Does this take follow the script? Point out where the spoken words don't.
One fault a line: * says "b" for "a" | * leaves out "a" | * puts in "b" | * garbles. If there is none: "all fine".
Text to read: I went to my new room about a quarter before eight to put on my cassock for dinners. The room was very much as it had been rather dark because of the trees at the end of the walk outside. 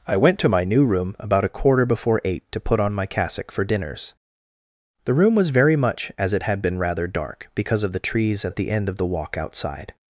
all fine